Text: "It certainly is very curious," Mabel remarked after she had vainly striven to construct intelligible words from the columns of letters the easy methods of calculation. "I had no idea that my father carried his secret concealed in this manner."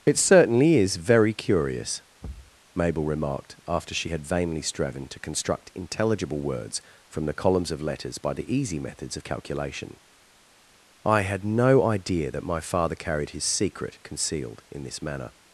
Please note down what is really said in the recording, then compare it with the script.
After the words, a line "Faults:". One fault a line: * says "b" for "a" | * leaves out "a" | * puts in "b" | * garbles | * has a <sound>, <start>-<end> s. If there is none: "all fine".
"It certainly is very curious," Mabel remarked after she had vainly striven to construct intelligible words from the columns of letters by the easy methods of calculation. "I had no idea that my father carried his secret concealed in this manner."
Faults:
* has a thud, 2.2-2.6 s
* puts in "by"